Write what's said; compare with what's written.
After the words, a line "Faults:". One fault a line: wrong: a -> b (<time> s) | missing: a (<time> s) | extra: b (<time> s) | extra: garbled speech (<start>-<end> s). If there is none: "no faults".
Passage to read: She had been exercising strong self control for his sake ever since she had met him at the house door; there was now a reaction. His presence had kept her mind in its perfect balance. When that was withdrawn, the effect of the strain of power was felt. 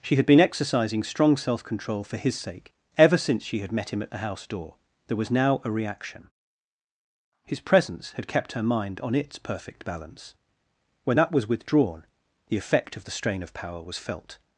She had been exercising strong self control for his sake ever since she had met him at the house door; there was now a reaction. His presence had kept her mind on its perfect balance. When that was withdrawn, the effect of the strain of power was felt.
Faults:
wrong: in -> on (9.0 s)